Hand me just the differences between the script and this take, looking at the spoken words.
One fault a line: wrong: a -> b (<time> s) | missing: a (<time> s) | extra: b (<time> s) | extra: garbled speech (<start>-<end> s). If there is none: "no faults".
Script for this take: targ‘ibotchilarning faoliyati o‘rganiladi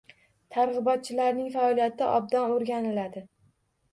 extra: obdon (2.2 s)